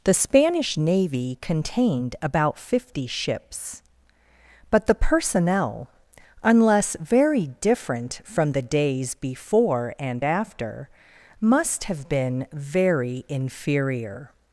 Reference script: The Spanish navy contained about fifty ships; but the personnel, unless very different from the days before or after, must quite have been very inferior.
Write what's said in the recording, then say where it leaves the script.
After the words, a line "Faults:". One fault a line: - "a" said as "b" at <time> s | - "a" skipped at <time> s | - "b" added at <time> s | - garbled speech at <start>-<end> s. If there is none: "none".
The Spanish navy contained about fifty ships; but the personnel, unless very different from the days before and after, must have been very inferior.
Faults:
- "or" said as "and" at 10.0 s
- "quite" skipped at 11.8 s